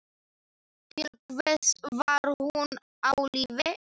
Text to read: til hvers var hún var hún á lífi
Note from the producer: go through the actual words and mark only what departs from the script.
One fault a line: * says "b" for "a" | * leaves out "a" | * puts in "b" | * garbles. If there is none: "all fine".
* leaves out "var hún"